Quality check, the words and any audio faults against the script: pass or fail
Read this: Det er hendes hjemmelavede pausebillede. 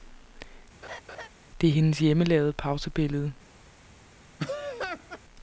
fail